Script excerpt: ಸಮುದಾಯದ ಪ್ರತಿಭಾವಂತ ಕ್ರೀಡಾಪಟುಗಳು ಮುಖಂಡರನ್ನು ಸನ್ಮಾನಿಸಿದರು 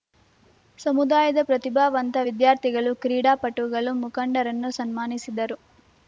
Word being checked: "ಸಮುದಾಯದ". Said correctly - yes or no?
yes